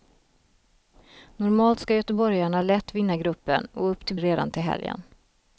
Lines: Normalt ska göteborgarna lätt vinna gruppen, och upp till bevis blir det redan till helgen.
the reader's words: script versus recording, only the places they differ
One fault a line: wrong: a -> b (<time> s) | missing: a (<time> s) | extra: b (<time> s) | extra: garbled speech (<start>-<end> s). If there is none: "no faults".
missing: bevis blir (4.2 s)